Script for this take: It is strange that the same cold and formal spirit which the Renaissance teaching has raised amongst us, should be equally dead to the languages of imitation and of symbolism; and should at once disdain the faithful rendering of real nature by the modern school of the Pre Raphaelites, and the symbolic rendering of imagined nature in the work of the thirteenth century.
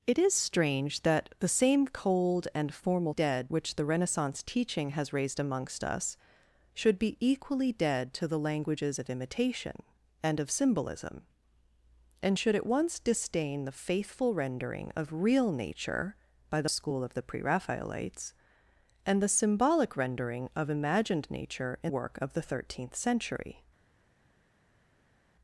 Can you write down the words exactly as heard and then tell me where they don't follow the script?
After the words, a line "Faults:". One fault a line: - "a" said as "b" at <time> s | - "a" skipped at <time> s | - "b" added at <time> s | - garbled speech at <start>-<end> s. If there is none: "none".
It is strange that the same cold and formal dead which the Renaissance teaching has raised amongst us, should be equally dead to the languages of imitation and of symbolism; and should at once disdain the faithful rendering of real nature by the school of the Pre Raphaelites, and the symbolic rendering of imagined nature in work of the thirteenth century.
Faults:
- "spirit" said as "dead" at 3.1 s
- "modern" skipped at 16.7 s
- "the" skipped at 21.9 s